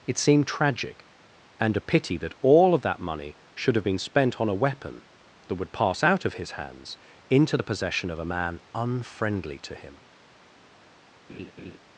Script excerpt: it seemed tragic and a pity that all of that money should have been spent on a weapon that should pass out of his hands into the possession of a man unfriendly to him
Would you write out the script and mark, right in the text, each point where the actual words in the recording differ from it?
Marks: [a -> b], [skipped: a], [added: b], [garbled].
it seemed tragic and a pity that all of that money should have been spent on a weapon that [should -> would] pass out of his hands into the possession of a man unfriendly to him